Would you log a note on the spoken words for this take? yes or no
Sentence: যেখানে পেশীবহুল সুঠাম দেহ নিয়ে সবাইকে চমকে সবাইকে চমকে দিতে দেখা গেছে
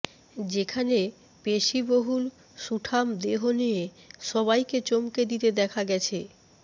yes